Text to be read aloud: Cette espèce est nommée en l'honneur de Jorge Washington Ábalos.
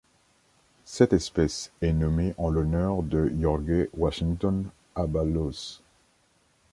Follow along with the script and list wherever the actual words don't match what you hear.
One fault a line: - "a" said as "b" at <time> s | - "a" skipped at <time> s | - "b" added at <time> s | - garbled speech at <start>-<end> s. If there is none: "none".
none